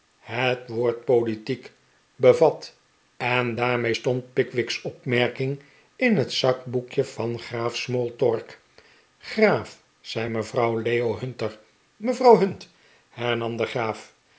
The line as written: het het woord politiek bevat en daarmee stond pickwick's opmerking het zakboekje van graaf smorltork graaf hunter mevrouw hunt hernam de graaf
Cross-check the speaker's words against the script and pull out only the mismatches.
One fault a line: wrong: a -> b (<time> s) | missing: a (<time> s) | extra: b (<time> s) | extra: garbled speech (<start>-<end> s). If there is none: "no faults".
missing: het (0.7 s)
extra: in (6.0 s)
extra: zei mevrouw leo (10.0 s)